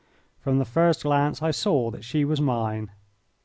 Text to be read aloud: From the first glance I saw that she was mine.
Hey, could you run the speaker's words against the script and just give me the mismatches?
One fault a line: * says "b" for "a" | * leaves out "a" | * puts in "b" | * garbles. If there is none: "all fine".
all fine